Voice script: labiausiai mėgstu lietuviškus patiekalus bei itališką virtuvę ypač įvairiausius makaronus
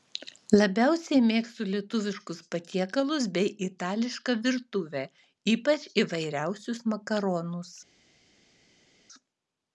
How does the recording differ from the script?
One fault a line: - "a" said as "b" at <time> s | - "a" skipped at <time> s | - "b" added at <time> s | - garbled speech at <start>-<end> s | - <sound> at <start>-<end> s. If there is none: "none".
none